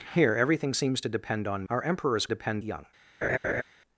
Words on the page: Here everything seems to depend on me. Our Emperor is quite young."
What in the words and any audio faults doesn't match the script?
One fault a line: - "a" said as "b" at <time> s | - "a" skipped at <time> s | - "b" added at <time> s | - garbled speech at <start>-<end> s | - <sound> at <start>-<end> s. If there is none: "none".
- "me" skipped at 1.6 s
- "quite" said as "depend" at 2.3 s
- laugh at 3.2-3.6 s